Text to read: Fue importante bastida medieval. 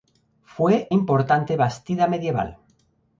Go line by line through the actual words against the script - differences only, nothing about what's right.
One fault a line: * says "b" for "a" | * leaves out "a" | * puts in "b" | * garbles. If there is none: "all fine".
all fine